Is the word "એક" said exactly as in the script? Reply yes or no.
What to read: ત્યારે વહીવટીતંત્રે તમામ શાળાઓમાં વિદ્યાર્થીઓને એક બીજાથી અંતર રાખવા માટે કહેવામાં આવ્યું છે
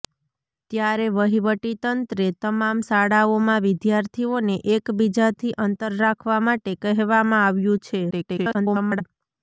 yes